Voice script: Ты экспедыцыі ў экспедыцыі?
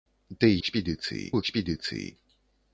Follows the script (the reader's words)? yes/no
yes